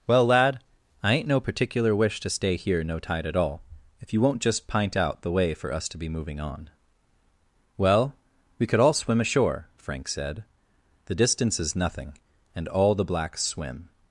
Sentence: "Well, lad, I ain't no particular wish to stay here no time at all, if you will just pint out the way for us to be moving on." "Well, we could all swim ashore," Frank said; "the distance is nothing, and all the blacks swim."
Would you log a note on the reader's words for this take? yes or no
yes